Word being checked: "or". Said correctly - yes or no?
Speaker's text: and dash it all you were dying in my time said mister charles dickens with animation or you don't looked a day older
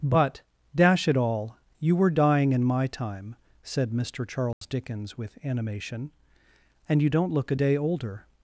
no